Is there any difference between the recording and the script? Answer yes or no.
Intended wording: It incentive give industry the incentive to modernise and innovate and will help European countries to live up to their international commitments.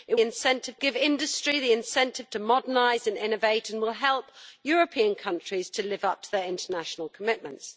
no